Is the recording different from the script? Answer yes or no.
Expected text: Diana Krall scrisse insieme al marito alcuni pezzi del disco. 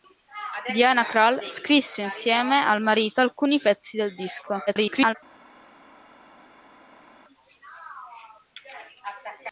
yes